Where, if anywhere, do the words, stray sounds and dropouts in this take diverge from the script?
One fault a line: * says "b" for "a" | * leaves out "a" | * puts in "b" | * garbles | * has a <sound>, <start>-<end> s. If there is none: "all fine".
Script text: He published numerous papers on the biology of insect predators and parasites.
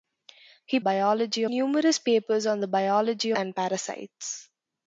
* says "biology" for "published"
* leaves out "of insect predators"